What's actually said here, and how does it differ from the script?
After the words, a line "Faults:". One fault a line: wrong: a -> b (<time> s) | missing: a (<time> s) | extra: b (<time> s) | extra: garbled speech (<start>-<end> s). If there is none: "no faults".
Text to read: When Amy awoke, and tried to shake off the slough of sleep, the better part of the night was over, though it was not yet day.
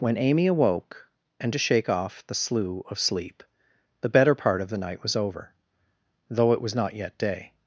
When Amy awoke, and to shake off the slough of sleep, the better part of the night was over, though it was not yet day.
Faults:
missing: tried (1.5 s)